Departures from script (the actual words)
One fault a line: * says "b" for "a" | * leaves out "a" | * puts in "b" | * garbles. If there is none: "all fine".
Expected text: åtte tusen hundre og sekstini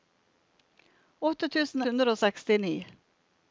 all fine